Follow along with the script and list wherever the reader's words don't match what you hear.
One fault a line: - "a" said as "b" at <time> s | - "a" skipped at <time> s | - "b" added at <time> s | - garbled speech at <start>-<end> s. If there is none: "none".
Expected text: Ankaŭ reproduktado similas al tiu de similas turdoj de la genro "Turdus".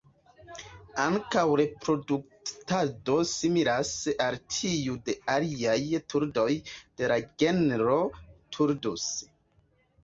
- "similas" said as "aliaj" at 5.3 s